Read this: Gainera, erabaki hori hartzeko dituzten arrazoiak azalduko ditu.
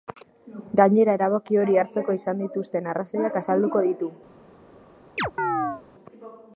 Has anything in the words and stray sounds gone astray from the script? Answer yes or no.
yes